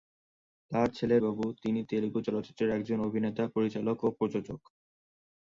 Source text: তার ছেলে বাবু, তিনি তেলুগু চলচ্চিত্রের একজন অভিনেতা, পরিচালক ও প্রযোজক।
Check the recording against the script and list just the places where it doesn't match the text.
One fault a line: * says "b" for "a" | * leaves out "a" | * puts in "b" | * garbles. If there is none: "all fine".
all fine